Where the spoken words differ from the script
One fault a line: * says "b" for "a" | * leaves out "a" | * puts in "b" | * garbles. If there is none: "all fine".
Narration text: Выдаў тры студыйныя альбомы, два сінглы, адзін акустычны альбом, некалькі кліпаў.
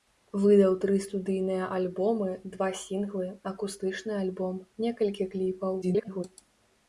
* leaves out "адзін"
* garbles